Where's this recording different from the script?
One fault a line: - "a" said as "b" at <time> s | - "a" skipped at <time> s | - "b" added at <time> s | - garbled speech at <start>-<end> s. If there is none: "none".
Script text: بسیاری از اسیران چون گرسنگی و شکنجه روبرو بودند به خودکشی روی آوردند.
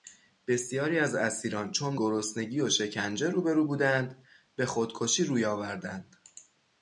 none